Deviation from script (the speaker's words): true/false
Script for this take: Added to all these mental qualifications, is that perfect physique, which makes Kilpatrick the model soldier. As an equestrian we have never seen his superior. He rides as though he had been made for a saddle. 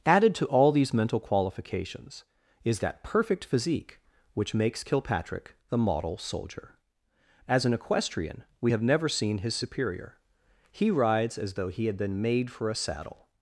false